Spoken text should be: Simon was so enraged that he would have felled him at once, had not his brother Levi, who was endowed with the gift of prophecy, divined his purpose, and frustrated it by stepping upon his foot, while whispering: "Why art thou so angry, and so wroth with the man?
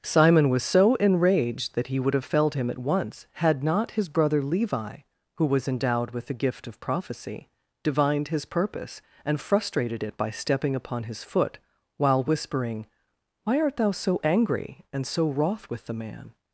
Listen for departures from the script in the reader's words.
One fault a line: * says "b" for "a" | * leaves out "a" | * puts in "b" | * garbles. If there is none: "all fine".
all fine